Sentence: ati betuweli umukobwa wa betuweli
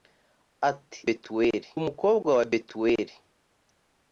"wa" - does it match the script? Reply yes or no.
yes